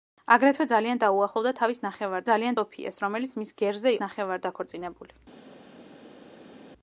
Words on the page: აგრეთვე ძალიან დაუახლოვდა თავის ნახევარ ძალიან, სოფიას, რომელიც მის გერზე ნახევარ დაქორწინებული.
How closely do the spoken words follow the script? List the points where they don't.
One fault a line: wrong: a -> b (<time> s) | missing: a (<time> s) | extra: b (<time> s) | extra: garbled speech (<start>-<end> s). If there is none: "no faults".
no faults